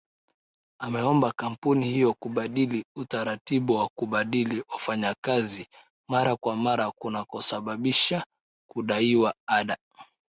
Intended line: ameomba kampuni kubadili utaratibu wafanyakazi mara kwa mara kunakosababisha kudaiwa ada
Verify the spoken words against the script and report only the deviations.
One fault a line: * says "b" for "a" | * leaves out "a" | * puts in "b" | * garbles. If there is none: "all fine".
* puts in "hiyo"
* puts in "wa kubadili"